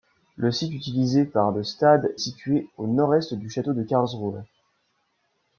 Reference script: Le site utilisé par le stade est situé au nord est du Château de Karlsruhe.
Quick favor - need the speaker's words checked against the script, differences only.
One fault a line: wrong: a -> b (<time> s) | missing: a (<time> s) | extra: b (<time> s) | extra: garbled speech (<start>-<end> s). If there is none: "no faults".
missing: est (2.1 s)